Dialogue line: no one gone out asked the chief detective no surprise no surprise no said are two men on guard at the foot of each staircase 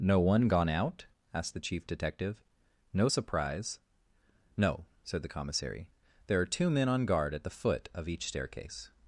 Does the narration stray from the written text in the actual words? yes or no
yes